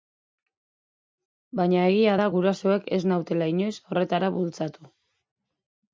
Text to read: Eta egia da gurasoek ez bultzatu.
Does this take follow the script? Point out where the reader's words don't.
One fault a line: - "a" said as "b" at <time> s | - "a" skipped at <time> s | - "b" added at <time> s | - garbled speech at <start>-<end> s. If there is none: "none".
- "Eta" said as "Baina" at 1.6 s
- "nautela inoiz horretara" added at 3.1 s